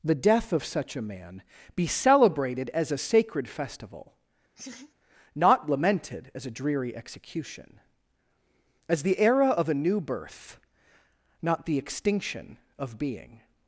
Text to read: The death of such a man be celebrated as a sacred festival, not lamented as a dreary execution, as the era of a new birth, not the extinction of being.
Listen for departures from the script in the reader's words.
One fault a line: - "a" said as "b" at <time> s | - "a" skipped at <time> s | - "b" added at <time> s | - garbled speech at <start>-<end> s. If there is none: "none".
none